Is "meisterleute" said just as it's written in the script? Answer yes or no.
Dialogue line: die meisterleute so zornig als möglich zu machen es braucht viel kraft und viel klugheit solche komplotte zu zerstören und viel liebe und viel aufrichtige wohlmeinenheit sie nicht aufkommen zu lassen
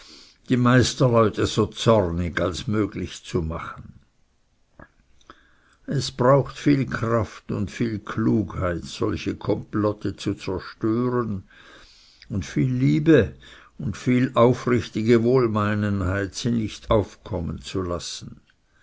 yes